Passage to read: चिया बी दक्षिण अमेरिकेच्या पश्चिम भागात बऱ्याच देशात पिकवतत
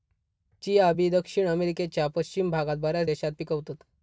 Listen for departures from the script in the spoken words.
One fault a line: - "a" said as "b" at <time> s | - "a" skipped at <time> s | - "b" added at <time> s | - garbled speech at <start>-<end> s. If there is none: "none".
none